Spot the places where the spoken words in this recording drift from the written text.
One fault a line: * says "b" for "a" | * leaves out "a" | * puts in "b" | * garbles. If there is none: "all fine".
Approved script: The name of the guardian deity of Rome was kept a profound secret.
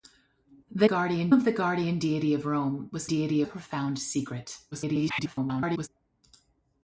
* says "guardian" for "name"
* says "deity" for "kept"
* garbles